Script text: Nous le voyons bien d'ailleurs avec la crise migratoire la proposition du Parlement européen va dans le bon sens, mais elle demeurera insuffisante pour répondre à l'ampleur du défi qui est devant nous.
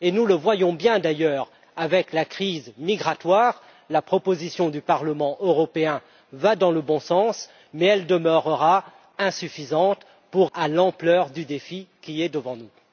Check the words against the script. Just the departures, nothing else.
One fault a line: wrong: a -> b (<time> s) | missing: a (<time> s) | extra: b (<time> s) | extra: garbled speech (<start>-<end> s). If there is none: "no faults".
missing: répondre (10.5 s)